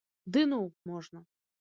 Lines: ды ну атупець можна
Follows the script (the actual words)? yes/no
no